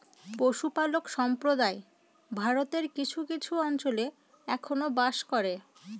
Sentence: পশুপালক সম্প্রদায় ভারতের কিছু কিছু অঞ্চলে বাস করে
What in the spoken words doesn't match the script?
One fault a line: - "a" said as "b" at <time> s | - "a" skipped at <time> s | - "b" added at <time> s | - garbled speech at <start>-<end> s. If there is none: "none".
- "এখনো" added at 4.5 s